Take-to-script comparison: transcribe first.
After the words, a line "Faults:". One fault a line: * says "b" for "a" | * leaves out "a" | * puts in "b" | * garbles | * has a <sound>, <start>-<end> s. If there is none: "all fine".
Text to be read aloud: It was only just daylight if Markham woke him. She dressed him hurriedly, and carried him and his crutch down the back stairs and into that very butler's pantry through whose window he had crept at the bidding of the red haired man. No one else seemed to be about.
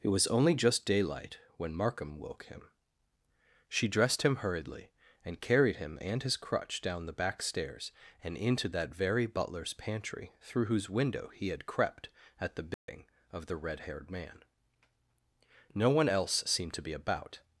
It was only just daylight when Markham woke him. She dressed him hurriedly, and carried him and his crutch down the back stairs and into that very butler's pantry through whose window he had crept at the bidding of the red haired man. No one else seemed to be about.
Faults:
* says "when" for "if"
* has a dropout, 12.7-12.9 s